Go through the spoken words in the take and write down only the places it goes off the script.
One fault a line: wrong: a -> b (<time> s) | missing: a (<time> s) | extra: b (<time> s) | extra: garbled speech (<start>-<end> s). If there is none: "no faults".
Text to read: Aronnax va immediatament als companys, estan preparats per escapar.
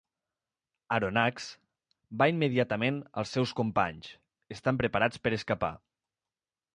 extra: seus (3.4 s)